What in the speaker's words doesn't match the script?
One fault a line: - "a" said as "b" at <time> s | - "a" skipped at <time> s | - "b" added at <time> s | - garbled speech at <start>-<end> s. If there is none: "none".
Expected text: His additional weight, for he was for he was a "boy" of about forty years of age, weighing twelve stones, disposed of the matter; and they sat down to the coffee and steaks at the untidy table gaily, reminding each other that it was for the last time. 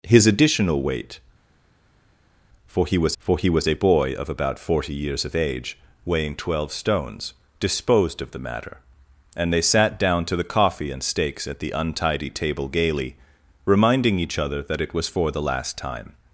none